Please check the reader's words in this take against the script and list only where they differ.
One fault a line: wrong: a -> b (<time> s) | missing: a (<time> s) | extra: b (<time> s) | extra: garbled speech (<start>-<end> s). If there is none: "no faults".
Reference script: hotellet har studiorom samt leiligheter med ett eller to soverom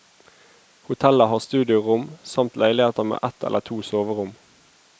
no faults